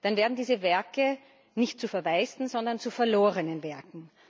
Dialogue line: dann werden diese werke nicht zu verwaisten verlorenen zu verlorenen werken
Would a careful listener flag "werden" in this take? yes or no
no